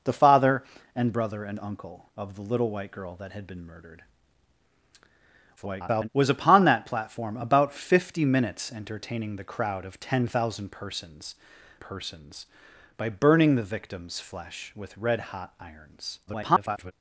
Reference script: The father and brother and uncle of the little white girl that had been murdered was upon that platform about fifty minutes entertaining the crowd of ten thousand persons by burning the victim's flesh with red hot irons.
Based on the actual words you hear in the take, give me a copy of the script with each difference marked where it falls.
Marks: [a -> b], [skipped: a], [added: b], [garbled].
The father and brother and uncle of the little white girl that had been murdered [garbled] was upon that platform about fifty minutes entertaining the crowd of ten thousand persons [added: persons] by burning the victim's flesh with red hot irons. [garbled]